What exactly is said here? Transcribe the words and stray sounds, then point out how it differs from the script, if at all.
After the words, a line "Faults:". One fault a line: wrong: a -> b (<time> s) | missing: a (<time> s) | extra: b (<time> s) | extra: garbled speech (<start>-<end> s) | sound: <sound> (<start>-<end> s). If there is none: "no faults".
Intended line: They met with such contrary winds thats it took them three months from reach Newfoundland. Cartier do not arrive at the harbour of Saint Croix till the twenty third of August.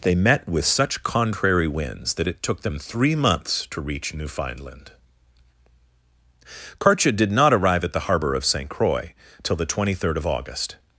They met with such contrary winds that it took them three months to reach Newfoundland. Cartier did not arrive at the harbour of Saint Croix till the twenty third of August.
Faults:
wrong: thats -> that (2.1 s)
wrong: from -> to (3.7 s)
wrong: do -> did (7.1 s)